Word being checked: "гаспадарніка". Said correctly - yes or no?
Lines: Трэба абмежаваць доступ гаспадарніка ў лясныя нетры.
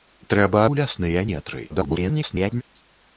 no